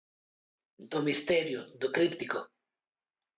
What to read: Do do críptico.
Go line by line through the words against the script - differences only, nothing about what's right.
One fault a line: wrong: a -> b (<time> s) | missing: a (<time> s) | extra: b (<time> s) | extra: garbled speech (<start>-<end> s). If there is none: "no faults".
extra: misterio (1.1 s)